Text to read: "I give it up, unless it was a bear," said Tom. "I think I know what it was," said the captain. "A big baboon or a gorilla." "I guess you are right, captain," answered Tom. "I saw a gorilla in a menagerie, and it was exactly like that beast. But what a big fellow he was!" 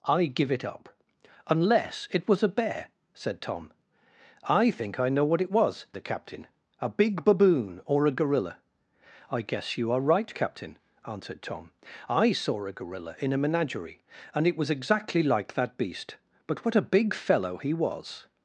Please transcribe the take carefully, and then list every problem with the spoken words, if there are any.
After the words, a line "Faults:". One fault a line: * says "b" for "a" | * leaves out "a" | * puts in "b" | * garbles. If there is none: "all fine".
"I give it up, unless it was a bear," said Tom. "I think I know what it was," the captain. "A big baboon or a gorilla." "I guess you are right, captain," answered Tom. "I saw a gorilla in a menagerie, and it was exactly like that beast. But what a big fellow he was!"
Faults:
* leaves out "said"